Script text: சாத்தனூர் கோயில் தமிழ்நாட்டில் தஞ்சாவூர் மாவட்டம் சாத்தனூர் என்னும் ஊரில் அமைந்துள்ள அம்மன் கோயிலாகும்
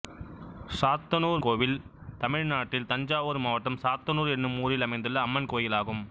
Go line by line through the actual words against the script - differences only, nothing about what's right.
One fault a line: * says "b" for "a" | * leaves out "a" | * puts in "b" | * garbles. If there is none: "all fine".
all fine